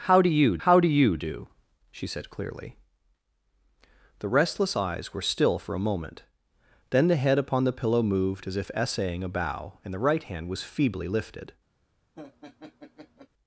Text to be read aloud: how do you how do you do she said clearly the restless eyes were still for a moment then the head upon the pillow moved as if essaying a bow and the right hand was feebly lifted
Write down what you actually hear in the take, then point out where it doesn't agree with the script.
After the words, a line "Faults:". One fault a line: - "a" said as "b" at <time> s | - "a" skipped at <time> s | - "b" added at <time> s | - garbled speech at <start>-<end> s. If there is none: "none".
how do you how do you do she said clearly the restless eyes were still for a moment then the head upon the pillow moved as if essaying a bow and the right hand was feebly lifted
Faults:
none